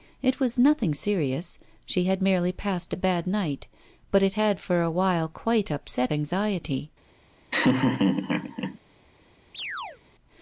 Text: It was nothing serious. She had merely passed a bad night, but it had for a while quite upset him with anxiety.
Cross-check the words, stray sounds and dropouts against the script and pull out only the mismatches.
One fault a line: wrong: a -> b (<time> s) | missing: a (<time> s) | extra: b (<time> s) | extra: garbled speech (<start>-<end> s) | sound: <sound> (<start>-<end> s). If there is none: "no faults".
missing: him with (6.1 s)
sound: laugh (7.5-8.8 s)
sound: chirp (9.5-10.0 s)